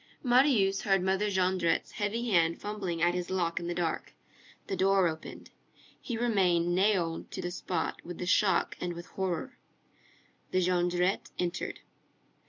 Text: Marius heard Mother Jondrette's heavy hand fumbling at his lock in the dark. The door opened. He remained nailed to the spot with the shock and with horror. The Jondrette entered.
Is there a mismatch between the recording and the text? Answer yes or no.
no